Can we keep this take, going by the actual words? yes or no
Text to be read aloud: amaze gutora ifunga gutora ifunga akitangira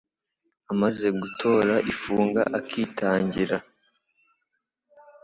no